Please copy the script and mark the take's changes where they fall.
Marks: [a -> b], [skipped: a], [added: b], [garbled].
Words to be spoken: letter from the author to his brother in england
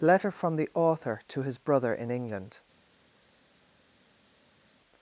letter from the author to his brother in england